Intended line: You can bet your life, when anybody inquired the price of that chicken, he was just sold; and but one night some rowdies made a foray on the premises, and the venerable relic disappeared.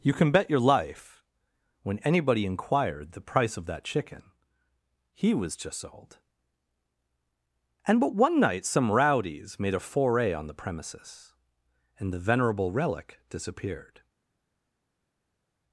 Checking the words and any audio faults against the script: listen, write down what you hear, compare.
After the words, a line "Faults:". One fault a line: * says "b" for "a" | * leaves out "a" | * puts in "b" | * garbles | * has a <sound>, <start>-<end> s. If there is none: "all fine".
You can bet your life, when anybody inquired the price of that chicken, he was just sold; and but one night some rowdies made a foray on the premises, and the venerable relic disappeared.
Faults:
all fine